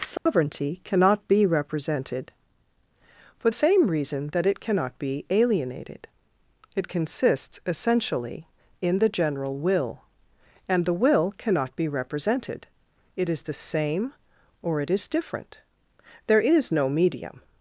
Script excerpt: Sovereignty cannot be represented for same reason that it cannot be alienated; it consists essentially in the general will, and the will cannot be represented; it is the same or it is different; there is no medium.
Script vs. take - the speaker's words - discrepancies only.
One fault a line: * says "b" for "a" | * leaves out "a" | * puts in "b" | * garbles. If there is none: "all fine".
all fine